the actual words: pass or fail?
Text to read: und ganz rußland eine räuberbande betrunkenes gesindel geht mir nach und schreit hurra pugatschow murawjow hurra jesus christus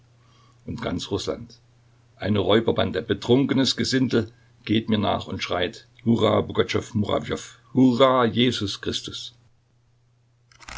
pass